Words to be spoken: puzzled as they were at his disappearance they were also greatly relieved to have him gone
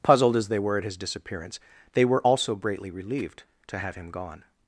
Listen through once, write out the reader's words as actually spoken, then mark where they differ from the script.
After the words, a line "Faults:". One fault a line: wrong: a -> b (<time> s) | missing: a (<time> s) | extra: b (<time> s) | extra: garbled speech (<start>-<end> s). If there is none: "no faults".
puzzled as they were at his disappearance they were also greatly relieved to have him gone
Faults:
no faults